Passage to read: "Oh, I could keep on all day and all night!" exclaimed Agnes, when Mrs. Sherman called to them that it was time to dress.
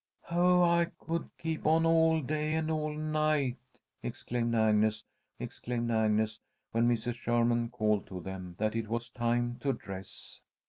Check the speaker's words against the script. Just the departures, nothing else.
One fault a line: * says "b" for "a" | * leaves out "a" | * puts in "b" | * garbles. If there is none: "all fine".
* puts in "exclaimed Agnes"